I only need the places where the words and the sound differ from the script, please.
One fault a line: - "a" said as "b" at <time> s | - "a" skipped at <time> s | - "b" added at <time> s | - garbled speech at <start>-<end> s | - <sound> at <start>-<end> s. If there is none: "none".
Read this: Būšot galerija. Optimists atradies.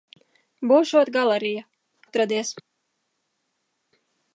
- "Optimists" skipped at 1.6 s